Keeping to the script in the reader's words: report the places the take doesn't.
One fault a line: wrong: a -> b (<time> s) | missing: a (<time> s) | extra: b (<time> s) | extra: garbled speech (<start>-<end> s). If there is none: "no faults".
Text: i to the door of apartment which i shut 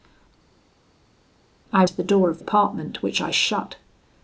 no faults